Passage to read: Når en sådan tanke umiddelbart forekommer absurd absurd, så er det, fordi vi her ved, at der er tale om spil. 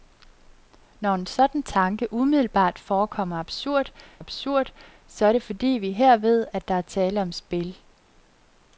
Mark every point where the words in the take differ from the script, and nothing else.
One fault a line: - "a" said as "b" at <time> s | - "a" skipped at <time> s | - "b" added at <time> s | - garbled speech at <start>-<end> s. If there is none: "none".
none